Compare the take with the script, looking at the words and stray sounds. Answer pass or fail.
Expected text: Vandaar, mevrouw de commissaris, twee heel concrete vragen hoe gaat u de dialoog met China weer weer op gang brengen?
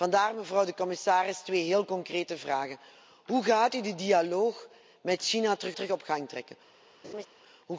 fail